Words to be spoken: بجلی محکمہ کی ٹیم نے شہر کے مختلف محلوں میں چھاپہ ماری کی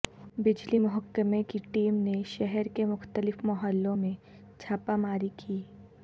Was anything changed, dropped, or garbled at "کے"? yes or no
no